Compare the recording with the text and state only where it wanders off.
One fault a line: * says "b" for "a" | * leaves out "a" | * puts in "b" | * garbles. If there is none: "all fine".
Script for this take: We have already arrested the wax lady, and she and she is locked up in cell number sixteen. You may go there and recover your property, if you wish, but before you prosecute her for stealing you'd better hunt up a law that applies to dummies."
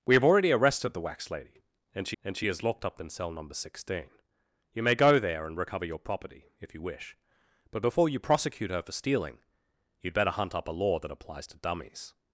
all fine